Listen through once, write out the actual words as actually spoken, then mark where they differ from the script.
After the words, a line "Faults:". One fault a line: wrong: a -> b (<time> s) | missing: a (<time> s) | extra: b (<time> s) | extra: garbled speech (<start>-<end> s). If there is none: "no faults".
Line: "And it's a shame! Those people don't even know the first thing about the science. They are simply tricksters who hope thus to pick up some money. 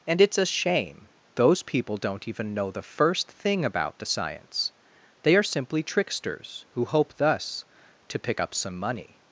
"And it's a shame! Those people don't even know the first thing about the science. They are simply tricksters who hope thus to pick up some money.
Faults:
no faults